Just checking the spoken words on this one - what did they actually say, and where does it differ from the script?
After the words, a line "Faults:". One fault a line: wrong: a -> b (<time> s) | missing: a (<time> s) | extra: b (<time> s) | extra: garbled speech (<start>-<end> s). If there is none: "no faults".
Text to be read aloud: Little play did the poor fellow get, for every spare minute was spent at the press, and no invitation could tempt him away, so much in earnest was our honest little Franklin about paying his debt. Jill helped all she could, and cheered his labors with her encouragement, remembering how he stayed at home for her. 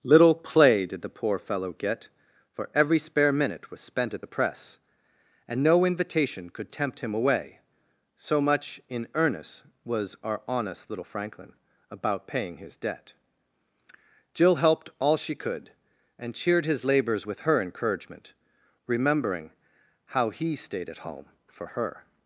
Little play did the poor fellow get, for every spare minute was spent at the press, and no invitation could tempt him away, so much in earnest was our honest little Franklin about paying his debt. Jill helped all she could, and cheered his labors with her encouragement, remembering how he stayed at home for her.
Faults:
no faults